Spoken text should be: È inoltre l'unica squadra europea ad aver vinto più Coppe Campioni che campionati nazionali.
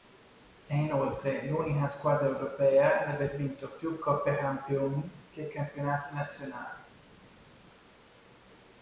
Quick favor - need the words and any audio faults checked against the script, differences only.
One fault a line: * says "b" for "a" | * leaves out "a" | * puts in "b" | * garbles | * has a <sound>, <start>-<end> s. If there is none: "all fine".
all fine